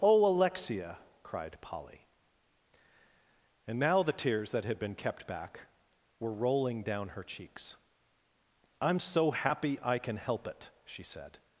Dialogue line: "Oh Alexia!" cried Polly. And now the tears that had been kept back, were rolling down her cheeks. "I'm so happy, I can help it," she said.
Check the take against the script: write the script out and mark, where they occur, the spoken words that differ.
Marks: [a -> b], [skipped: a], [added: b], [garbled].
"Oh Alexia!" cried Polly. And now the tears that had been kept back, were rolling down her cheeks. "I'm so happy, I can help it," she said.